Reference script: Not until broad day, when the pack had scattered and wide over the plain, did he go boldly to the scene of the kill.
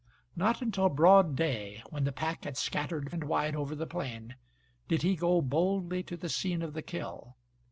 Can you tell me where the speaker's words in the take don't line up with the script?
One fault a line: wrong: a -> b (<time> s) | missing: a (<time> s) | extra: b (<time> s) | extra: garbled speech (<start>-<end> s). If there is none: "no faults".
no faults